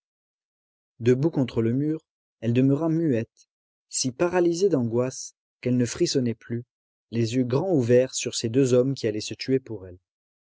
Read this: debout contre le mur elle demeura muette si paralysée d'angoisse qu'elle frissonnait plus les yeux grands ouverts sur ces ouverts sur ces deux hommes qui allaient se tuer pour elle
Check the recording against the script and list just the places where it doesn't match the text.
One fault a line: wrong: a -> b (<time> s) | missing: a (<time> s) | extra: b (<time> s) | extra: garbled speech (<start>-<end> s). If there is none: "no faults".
extra: ne (5.7 s)
missing: ouverts sur ces (8.5 s)